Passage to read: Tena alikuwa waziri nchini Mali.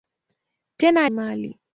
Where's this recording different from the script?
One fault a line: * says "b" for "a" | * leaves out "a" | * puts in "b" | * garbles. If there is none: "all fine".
* leaves out "alikuwa waziri nchini"